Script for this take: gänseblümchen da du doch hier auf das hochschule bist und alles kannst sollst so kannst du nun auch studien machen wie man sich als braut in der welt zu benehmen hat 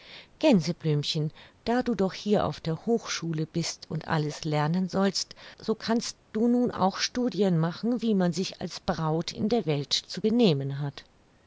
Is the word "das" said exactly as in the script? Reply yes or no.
no